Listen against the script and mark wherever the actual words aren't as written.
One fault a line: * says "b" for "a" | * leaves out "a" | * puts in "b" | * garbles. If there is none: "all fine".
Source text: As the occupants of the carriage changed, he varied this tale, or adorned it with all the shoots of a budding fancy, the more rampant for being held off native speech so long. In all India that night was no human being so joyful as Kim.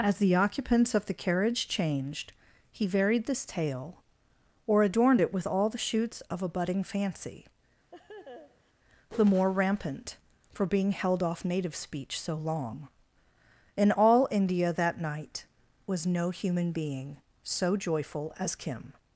all fine